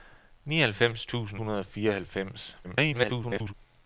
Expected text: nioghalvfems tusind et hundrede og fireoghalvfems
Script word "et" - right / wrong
wrong